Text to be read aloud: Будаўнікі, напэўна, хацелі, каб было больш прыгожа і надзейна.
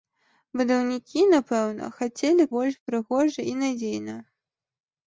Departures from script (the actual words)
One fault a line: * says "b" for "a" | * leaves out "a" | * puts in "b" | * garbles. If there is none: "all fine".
* leaves out "каб было"